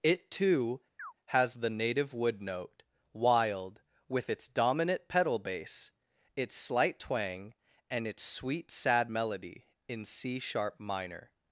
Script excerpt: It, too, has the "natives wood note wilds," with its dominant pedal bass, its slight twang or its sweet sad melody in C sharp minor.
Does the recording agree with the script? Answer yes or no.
no